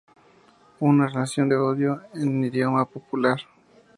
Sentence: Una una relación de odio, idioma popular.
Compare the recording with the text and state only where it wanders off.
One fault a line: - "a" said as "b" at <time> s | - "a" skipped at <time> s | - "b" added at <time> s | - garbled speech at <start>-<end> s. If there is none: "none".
- "una" skipped at 1.1 s
- "en" added at 2.2 s